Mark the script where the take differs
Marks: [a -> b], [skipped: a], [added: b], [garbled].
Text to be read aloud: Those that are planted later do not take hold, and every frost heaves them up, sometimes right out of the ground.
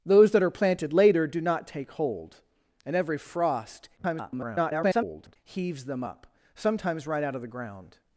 Those that are planted later do not take hold, and every frost [garbled] heaves them up, sometimes right out of the ground.